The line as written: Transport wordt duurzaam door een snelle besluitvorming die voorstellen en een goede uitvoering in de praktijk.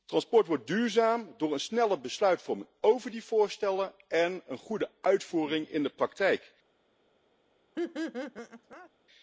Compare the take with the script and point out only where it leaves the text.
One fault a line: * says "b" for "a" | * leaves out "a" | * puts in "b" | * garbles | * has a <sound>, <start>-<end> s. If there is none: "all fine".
* puts in "over"
* has a laugh, 7.8-8.9 s